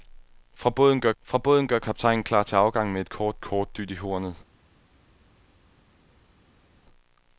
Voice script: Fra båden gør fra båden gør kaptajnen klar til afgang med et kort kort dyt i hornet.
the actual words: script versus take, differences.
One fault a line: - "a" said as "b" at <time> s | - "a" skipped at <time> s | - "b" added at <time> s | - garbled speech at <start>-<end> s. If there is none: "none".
none